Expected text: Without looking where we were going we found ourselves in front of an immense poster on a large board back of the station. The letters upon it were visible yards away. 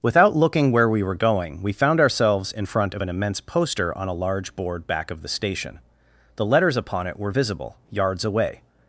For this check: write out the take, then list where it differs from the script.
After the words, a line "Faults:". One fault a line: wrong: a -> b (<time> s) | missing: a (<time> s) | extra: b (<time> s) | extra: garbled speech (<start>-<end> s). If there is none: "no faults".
Without looking where we were going we found ourselves in front of an immense poster on a large board back of the station. The letters upon it were visible yards away.
Faults:
no faults